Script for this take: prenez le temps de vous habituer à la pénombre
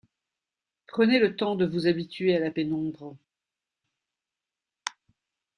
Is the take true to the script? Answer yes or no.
yes